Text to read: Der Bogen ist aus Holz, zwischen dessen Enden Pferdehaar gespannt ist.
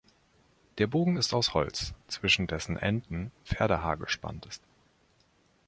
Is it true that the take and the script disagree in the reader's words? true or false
false